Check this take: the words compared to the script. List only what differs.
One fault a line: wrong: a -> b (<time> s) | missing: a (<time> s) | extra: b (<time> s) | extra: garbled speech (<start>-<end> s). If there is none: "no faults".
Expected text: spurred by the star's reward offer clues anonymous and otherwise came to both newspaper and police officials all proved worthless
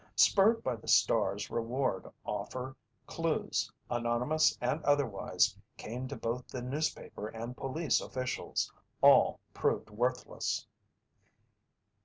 extra: the (6.5 s)